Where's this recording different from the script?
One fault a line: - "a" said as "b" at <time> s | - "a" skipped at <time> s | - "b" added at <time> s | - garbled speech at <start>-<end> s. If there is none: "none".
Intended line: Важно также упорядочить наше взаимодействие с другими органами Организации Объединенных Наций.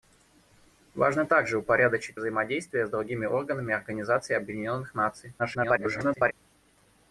- "наше" skipped at 2.2 s
- garbled speech at 5.4-6.3 s